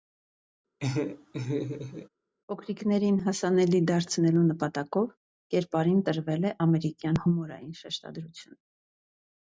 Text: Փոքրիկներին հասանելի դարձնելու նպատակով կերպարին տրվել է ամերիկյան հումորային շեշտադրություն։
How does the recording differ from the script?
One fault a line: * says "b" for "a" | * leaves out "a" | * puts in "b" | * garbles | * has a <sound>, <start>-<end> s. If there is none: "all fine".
* has a laugh, 0.8-2.1 s